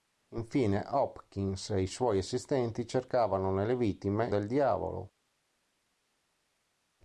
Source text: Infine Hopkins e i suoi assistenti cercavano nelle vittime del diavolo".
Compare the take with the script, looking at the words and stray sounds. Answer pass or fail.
pass